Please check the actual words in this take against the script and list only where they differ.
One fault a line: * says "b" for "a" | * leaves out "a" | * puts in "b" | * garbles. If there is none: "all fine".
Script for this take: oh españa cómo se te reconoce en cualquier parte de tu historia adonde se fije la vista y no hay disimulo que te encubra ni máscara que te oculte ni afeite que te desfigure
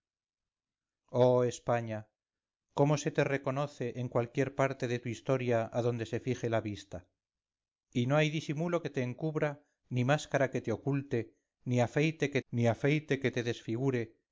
* puts in "ni afeite que"